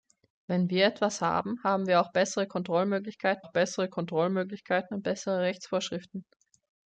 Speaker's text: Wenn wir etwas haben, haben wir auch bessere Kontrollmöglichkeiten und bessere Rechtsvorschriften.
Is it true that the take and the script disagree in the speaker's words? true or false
true